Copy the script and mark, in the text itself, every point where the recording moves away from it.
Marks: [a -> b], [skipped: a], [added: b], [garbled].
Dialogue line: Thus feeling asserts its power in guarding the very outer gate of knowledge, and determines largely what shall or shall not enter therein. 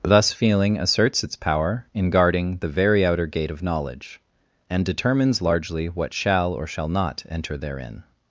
Thus feeling asserts its power in guarding the very outer gate of knowledge, and determines largely what shall or shall not enter therein.